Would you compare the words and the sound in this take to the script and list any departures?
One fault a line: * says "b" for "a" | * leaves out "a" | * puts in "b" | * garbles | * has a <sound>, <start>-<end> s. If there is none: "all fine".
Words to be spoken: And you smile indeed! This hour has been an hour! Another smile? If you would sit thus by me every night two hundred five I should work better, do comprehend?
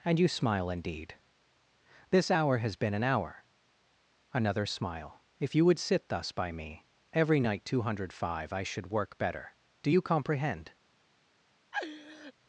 * puts in "you"
* has a laugh, 11.7-12.3 s